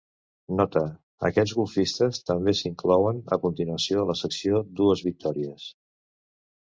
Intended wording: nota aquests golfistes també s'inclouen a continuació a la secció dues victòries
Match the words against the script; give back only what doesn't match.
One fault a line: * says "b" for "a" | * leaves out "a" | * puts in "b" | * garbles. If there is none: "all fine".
all fine